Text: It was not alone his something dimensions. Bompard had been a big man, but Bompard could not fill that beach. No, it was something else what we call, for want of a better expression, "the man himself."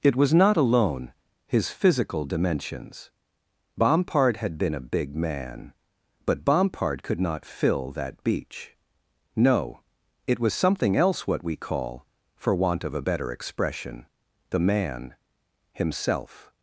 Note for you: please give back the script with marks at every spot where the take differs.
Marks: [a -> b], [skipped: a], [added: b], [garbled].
It was not alone his [something -> physical] dimensions. Bompard had been a big man, but Bompard could not fill that beach. No, it was something else what we call, for want of a better expression, "the man himself."